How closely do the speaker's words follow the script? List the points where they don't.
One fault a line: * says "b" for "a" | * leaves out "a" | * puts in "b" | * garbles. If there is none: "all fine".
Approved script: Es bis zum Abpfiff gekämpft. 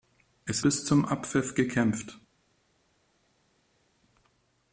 all fine